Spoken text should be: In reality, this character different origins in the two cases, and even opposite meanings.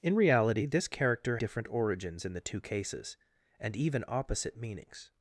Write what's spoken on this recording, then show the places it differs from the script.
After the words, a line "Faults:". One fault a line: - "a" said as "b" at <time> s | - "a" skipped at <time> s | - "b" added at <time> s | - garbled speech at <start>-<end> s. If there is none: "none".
In reality, this character different origins in the two cases, and even opposite meanings.
Faults:
none